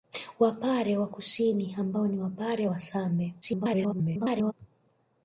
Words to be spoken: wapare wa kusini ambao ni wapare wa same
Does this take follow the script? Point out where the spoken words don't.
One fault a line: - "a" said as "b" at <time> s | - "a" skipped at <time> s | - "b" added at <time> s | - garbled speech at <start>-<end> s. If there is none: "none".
- garbled speech at 3.4-4.5 s